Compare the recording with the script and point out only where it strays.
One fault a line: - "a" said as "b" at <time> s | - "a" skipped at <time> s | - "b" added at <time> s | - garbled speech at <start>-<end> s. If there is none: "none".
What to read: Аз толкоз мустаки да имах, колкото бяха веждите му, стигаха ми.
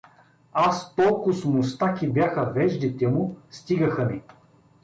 - "да имах колкото" skipped at 2.1 s